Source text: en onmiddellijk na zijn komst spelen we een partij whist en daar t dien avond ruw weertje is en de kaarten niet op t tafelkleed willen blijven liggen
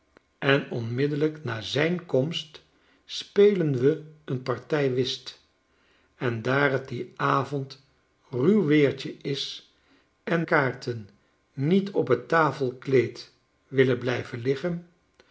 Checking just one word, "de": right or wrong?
wrong